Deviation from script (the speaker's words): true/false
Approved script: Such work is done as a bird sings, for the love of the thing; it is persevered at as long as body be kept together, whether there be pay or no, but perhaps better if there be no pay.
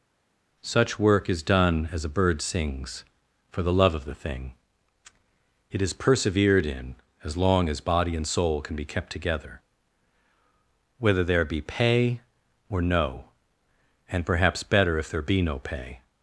true